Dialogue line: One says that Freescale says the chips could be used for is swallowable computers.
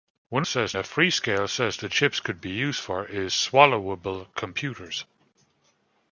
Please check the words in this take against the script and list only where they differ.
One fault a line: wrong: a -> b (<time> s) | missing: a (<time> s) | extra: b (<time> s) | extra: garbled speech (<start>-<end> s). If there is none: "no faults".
no faults